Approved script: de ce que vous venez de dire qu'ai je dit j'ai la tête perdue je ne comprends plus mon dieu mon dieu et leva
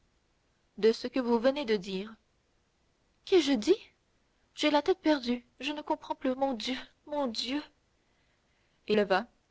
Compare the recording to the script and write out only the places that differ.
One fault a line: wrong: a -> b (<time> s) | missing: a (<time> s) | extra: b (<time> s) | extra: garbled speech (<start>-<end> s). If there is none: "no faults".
no faults